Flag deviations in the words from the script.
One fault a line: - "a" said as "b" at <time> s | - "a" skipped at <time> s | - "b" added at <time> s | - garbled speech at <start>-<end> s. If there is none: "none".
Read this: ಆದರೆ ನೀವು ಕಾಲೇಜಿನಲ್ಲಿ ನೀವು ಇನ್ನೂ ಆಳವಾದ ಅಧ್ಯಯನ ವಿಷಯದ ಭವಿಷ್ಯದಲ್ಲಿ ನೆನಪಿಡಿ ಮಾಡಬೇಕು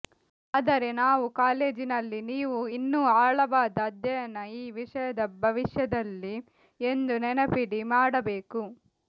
- "ನೀವು" said as "ನಾವು" at 1.0 s
- "ಈ" added at 4.5 s
- "ಎಂದು" added at 6.8 s